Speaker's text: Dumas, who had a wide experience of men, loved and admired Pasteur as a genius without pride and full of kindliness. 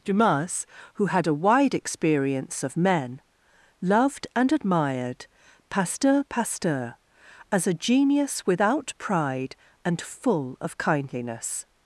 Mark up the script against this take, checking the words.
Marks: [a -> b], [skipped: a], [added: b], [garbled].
Dumas, who had a wide experience of men, loved and admired Pasteur [added: Pasteur] as a genius without pride and full of kindliness.